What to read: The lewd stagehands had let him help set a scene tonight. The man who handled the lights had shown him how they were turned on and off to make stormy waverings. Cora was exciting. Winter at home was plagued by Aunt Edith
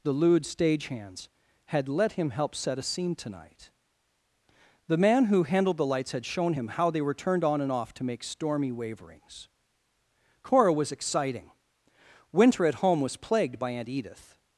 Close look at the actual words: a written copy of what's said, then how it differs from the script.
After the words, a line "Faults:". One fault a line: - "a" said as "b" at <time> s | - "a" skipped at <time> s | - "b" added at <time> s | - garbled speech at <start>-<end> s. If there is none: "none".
The lewd stagehands had let him help set a scene tonight. The man who handled the lights had shown him how they were turned on and off to make stormy waverings. Cora was exciting. Winter at home was plagued by Aunt Edith
Faults:
none